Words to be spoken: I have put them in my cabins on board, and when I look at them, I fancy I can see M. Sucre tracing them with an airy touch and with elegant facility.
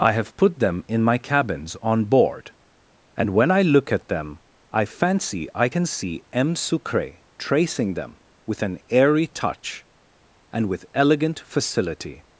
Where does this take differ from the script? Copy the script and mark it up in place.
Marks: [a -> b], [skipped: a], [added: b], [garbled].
I have put them in my cabins on board, and when I look at them, I fancy I can see M. Sucre tracing them with an airy touch and with elegant facility.